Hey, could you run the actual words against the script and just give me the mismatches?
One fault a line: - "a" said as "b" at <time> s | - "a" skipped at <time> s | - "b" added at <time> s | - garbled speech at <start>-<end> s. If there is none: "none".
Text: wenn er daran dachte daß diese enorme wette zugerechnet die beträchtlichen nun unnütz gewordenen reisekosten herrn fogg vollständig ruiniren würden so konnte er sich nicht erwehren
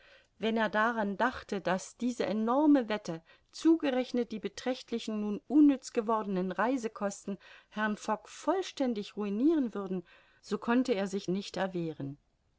none